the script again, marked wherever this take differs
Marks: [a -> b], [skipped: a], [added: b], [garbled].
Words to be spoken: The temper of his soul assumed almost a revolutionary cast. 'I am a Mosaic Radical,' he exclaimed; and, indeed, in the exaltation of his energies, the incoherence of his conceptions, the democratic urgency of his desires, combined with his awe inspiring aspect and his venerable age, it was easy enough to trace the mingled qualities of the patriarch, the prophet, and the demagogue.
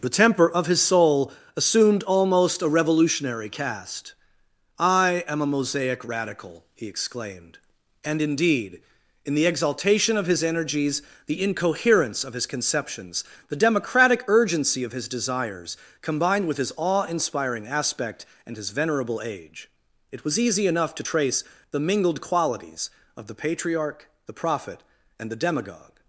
The temper of his soul assumed almost a revolutionary cast. 'I am a Mosaic Radical,' he exclaimed; and, indeed, in the exaltation of his energies, the incoherence of his conceptions, the democratic urgency of his desires, combined with his awe inspiring aspect and his venerable age, it was easy enough to trace the mingled qualities of the patriarch, the prophet, and the demagogue.